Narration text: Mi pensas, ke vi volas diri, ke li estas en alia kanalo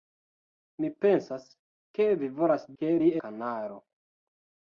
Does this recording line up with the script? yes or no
no